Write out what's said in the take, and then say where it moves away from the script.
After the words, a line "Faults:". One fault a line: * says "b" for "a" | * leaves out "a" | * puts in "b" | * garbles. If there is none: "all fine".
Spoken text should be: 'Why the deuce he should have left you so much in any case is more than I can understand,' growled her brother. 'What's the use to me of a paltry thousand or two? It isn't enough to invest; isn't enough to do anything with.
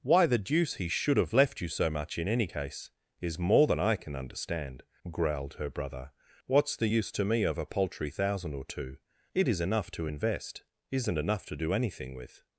'Why the deuce he should have left you so much in any case is more than I can understand,' growled her brother. 'What's the use to me of a paltry thousand or two? It is enough to invest; isn't enough to do anything with.
Faults:
* says "is" for "isn't"